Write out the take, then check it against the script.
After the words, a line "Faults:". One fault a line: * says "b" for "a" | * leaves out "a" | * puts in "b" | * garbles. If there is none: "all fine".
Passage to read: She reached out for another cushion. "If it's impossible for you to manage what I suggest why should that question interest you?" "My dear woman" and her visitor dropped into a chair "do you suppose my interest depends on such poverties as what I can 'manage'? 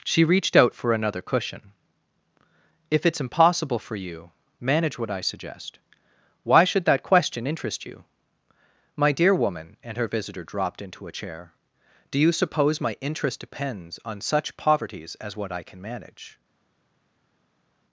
She reached out for another cushion. "If it's impossible for you manage what I suggest why should that question interest you?" "My dear woman" and her visitor dropped into a chair "do you suppose my interest depends on such poverties as what I can 'manage'?
Faults:
* leaves out "to"